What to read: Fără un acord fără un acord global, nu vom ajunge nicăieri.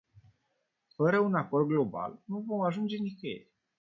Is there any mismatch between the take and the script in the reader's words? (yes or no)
yes